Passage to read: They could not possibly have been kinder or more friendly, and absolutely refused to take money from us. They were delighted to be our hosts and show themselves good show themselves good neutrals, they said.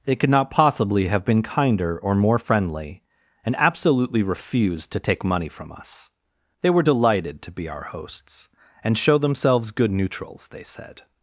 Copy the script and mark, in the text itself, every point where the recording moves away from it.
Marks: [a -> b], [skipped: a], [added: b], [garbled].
They could not possibly have been kinder or more friendly, and absolutely refused to take money from us. They were delighted to be our hosts and show themselves good [skipped: show themselves good] neutrals, they said.